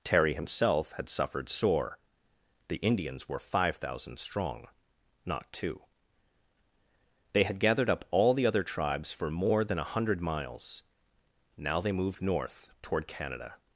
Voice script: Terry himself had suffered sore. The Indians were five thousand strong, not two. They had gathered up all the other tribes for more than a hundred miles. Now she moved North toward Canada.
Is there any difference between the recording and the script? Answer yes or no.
yes